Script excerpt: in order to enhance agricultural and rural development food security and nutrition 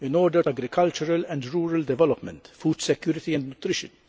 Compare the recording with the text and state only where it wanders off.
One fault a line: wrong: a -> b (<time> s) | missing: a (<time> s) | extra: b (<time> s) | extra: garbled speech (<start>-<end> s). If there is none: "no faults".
missing: to enhance (0.4 s)